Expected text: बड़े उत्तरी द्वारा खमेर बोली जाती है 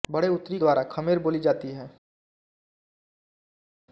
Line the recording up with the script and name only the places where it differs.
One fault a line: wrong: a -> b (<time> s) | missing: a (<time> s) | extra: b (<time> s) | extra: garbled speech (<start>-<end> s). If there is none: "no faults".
no faults